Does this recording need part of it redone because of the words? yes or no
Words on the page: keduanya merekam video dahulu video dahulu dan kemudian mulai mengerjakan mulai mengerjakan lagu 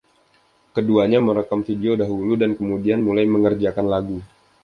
yes